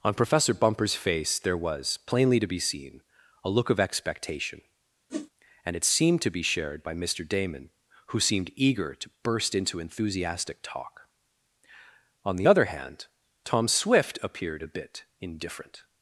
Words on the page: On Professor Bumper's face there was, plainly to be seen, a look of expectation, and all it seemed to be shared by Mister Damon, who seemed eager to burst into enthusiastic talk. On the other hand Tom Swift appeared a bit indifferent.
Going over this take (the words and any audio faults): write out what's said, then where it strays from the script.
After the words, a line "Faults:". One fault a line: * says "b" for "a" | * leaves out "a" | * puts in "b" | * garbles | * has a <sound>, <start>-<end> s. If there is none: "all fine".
On Professor Bumper's face there was, plainly to be seen, a look of expectation, and it seemed to be shared by Mister Damon, who seemed eager to burst into enthusiastic talk. On the other hand Tom Swift appeared a bit indifferent.
Faults:
* has a whoosh, 5.1-5.3 s
* leaves out "all"